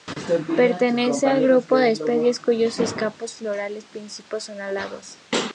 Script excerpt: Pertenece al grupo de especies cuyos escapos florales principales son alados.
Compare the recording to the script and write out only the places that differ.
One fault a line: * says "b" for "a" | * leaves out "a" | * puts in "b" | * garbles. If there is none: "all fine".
all fine